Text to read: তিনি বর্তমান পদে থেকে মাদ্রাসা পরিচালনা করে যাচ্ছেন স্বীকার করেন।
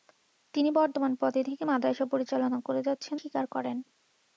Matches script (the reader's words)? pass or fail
pass